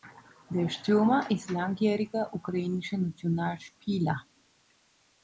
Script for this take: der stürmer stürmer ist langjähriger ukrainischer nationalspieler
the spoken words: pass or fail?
fail